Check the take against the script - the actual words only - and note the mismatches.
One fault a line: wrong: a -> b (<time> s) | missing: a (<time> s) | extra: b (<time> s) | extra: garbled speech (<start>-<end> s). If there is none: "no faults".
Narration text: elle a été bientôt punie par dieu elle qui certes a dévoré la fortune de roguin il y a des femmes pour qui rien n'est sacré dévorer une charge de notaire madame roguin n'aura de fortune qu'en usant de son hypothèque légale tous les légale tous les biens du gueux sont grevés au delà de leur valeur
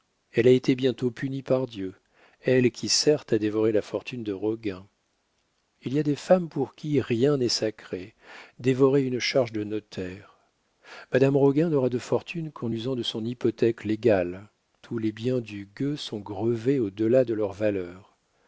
missing: légale tous les (15.1 s)